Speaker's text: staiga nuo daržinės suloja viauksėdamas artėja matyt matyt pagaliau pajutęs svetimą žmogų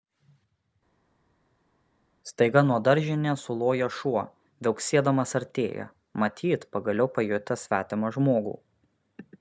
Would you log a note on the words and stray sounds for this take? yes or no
yes